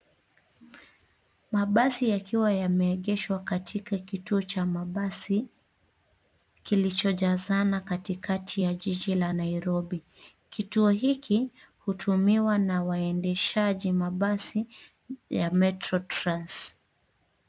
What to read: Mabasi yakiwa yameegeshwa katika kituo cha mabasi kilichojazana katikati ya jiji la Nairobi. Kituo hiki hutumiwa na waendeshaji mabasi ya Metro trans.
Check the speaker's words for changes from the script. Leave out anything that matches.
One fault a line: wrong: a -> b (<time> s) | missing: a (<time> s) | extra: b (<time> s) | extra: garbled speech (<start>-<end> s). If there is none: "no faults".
no faults